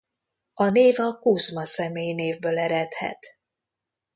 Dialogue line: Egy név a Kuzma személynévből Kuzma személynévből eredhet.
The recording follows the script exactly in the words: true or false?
false